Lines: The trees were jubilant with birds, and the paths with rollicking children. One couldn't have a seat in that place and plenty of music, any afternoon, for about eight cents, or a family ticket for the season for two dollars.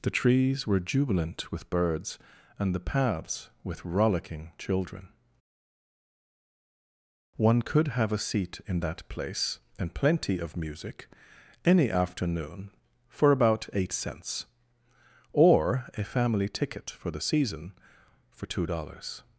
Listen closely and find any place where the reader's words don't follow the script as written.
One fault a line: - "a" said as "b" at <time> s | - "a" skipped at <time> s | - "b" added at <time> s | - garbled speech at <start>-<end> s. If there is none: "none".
- "couldn't" said as "could" at 7.6 s